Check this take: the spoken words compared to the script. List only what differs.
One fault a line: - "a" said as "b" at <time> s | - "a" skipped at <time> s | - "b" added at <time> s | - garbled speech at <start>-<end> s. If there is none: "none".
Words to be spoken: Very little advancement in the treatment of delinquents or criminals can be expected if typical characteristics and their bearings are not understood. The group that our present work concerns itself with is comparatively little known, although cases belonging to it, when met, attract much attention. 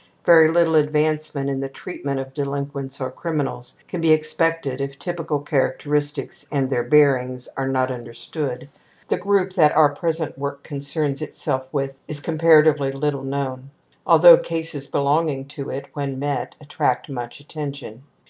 none